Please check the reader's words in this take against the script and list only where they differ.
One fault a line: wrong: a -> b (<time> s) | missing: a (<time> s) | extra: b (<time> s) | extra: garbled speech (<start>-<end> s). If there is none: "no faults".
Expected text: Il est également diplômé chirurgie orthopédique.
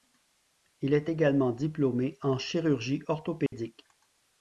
extra: en (2.2 s)